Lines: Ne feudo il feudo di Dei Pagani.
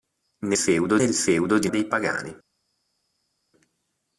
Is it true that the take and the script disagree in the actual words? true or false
false